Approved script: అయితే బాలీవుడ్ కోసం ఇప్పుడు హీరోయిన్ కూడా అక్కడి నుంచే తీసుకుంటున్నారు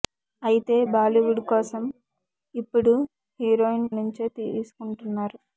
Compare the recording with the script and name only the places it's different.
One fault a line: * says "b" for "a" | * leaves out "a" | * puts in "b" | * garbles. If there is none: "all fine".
* leaves out "కూడా అక్కడి"